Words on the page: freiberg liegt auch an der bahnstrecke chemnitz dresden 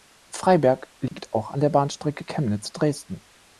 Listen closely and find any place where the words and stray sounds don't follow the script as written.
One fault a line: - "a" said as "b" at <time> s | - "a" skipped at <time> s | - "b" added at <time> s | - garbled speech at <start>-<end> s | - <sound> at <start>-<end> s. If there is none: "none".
- dropout at 1.1-1.1 s